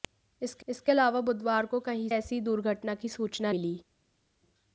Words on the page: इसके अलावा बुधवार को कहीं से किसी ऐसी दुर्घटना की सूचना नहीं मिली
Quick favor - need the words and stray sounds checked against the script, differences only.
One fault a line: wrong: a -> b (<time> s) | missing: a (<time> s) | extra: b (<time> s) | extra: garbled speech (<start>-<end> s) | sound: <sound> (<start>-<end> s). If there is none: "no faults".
extra: इसके (0.7 s)
missing: से किसी (2.1 s)
missing: नहीं (3.5 s)